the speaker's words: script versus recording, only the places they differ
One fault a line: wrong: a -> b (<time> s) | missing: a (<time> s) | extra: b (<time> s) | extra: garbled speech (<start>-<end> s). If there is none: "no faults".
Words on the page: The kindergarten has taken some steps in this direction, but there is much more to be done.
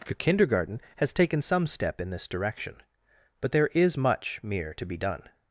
wrong: steps -> step (1.7 s)
wrong: more -> mere (4.4 s)